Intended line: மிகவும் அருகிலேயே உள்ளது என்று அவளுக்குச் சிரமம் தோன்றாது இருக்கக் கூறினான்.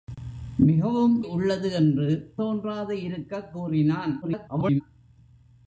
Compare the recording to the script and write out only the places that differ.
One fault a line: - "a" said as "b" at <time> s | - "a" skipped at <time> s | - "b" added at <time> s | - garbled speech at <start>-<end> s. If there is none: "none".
- "அருகிலேயே" skipped at 1.2 s
- "அவளுக்குச் சிரமம்" skipped at 2.1 s
- garbled speech at 4.2-4.8 s